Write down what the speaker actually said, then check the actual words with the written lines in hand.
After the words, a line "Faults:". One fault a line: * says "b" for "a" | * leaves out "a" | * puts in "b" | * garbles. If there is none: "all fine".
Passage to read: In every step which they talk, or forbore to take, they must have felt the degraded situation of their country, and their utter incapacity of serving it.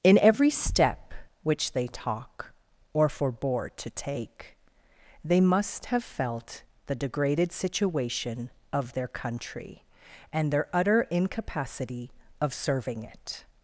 In every step which they talk, or forbore to take, they must have felt the degraded situation of their country, and their utter incapacity of serving it.
Faults:
all fine